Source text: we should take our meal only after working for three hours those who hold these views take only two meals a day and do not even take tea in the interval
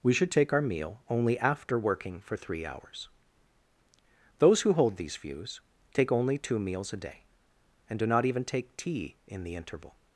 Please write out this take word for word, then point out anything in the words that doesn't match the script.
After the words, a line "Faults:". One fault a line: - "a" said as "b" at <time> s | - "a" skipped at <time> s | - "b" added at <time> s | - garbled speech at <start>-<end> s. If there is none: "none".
we should take our meal only after working for three hours those who hold these views take only two meals a day and do not even take tea in the interval
Faults:
none